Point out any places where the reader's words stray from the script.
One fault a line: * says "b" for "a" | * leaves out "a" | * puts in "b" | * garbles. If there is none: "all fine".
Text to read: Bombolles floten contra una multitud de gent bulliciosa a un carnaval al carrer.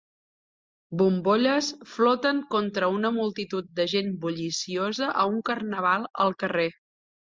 all fine